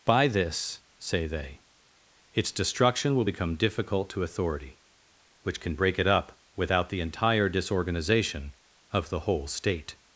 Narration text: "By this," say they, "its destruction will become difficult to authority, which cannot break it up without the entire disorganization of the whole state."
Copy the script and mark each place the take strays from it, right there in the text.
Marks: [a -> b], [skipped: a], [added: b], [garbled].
"By this," say they, "its destruction will become difficult to authority, which [cannot -> can] break it up without the entire disorganization of the whole state."